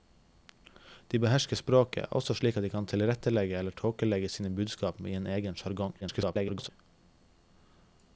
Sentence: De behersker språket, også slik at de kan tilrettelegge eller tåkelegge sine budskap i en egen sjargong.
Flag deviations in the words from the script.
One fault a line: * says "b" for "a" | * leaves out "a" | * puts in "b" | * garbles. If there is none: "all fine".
* garbles